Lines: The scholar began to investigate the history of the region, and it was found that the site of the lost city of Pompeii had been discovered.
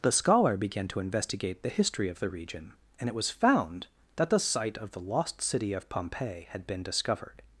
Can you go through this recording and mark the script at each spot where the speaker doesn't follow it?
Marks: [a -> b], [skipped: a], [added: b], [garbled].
The scholar began to investigate the history of the region, and it was found that the site of the lost city of Pompeii had been discovered.